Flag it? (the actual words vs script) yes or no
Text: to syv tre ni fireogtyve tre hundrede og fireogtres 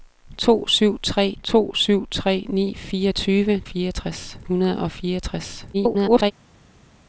yes